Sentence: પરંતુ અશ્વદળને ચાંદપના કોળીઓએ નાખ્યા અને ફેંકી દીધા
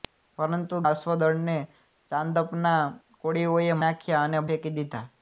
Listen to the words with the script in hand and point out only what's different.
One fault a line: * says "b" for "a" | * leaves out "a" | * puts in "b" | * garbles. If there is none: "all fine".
all fine